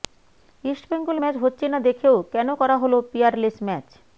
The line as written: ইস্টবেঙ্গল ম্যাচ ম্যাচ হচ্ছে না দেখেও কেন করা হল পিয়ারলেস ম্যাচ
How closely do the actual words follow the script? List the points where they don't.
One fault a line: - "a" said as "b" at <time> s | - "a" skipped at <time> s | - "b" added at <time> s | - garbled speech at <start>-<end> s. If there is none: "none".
- "ম্যাচ" skipped at 1.4 s